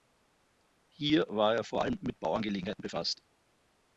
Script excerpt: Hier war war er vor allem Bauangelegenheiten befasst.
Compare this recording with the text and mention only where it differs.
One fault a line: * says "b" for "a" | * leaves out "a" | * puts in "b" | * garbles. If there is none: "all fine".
* leaves out "war"
* puts in "mit"